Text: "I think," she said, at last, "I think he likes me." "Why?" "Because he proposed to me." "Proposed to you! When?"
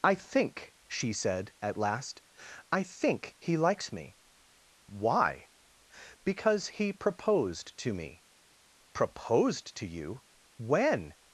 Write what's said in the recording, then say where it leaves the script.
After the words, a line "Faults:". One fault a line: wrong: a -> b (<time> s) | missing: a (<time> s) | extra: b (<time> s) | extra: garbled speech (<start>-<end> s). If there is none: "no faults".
"I think," she said, at last, "I think he likes me." "Why?" "Because he proposed to me." "Proposed to you! When?"
Faults:
no faults